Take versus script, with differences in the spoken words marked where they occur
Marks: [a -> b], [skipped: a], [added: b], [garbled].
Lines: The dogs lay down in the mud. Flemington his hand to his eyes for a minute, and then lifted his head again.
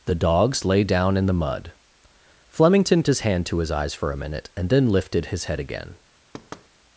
The dogs lay down in the mud. Flemington his hand to his eyes for a minute, and then lifted his head again.